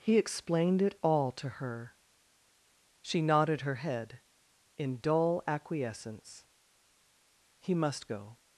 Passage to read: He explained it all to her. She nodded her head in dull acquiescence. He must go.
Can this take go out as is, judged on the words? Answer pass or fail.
pass